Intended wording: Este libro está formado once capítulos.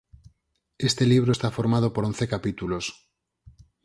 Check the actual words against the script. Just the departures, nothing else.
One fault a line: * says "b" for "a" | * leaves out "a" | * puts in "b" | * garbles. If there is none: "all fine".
* puts in "por"